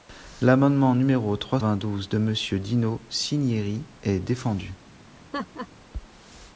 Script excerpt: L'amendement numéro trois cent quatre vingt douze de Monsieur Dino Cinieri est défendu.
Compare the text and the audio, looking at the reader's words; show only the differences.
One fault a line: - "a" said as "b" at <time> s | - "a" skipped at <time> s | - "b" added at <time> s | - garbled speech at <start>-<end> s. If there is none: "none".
- "cent quatre" skipped at 1.6 s